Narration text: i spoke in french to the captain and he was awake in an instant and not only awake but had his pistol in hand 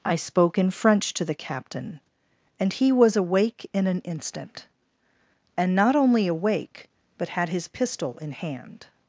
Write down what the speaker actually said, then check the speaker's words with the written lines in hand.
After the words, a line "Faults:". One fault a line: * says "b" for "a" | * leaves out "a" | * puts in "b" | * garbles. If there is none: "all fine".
i spoke in french to the captain and he was awake in an instant and not only awake but had his pistol in hand
Faults:
all fine